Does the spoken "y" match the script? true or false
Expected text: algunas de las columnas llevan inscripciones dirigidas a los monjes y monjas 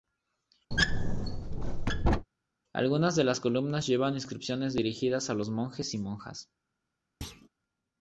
true